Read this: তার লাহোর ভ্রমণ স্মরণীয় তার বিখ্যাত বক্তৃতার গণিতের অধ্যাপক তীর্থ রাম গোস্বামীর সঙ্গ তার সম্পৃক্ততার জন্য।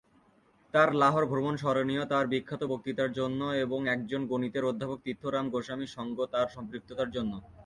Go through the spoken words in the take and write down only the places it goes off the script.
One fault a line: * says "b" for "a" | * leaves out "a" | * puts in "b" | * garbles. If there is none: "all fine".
* puts in "জন্য এবং একজন"